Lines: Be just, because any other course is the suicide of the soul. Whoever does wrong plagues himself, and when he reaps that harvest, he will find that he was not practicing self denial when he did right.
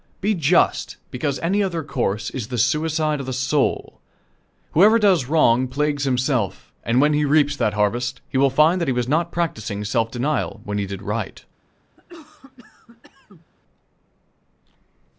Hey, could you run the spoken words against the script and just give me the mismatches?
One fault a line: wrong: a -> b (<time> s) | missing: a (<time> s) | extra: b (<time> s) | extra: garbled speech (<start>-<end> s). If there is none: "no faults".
no faults